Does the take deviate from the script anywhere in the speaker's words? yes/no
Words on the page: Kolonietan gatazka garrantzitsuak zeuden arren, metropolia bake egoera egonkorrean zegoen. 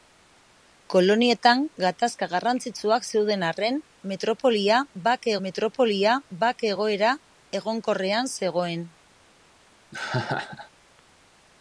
yes